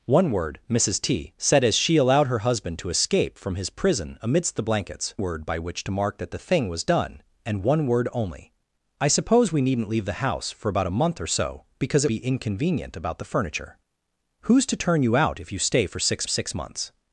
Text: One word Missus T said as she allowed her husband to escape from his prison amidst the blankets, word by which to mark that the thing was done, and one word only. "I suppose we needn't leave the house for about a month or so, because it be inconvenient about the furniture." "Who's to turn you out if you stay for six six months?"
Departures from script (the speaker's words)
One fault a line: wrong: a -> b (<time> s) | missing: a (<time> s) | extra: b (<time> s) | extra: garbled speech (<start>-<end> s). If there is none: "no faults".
no faults